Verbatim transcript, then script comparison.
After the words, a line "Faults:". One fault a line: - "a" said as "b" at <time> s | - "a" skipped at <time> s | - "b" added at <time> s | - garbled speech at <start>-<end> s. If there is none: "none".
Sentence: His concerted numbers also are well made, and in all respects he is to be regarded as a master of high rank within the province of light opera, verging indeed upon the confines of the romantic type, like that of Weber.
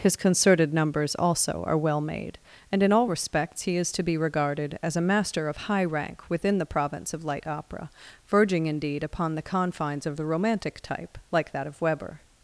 His concerted numbers also are well made, and in all respects he is to be regarded as a master of high rank within the province of light opera, verging indeed upon the confines of the romantic type, like that of Weber.
Faults:
none